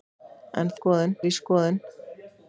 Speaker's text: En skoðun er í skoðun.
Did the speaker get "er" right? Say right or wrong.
right